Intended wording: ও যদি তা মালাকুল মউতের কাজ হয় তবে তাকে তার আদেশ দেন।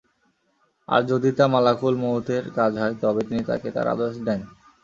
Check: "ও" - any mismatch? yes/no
yes